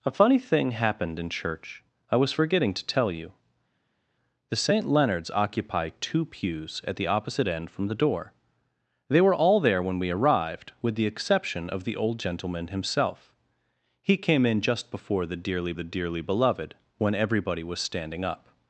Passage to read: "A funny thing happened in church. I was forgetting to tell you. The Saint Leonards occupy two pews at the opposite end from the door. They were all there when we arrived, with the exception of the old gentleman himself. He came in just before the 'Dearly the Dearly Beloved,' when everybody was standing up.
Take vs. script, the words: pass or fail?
pass